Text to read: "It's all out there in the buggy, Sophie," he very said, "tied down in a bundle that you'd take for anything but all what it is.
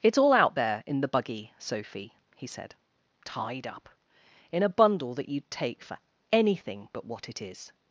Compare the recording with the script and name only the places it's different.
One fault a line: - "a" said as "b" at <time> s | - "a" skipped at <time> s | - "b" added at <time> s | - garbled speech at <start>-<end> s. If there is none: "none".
- "very" skipped at 2.5 s
- "down" said as "up" at 3.7 s
- "all" skipped at 7.1 s